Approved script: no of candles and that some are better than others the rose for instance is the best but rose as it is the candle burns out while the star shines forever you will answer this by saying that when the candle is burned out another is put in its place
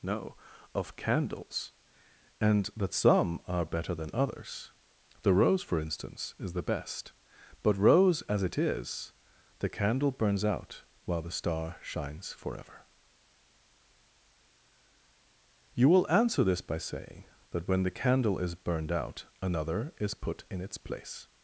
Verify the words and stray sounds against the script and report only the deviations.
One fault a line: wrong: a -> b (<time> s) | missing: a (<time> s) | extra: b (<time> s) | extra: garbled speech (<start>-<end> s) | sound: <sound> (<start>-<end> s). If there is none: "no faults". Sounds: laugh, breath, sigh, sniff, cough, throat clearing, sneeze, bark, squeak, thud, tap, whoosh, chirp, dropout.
no faults